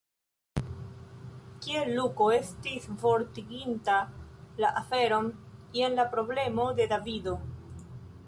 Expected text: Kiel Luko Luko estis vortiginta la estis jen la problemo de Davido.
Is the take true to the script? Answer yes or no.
no